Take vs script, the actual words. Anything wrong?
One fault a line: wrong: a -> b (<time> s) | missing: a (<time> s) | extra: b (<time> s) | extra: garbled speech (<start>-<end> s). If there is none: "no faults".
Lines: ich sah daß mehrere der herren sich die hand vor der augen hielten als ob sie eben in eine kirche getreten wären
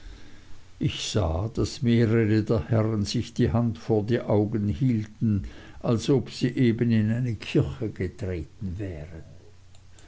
wrong: der -> die (4.0 s)